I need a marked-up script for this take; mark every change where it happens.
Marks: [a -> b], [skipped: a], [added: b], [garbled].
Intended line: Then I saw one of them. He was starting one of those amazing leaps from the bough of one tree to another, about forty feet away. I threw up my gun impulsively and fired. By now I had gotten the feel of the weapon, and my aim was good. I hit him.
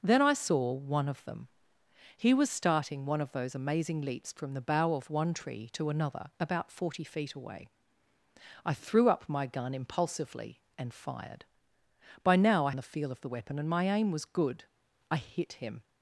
Then I saw one of them. He was starting one of those amazing leaps from the bough of one tree to another, about forty feet away. I threw up my gun impulsively and fired. By now I [skipped: had gotten] the feel of the weapon, and my aim was good. I hit him.